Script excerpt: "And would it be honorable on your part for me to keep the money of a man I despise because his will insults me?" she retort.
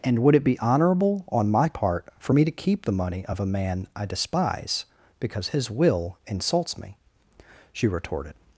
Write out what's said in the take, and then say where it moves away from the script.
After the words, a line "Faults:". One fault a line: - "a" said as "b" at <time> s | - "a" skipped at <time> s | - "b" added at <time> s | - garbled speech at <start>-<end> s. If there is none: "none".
"And would it be honorable on my part for me to keep the money of a man I despise because his will insults me?" she retorted.
Faults:
- "your" said as "my" at 1.5 s
- "retort" said as "retorted" at 7.9 s